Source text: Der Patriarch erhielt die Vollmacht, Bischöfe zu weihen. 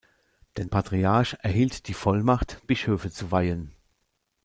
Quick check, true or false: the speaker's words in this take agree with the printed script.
true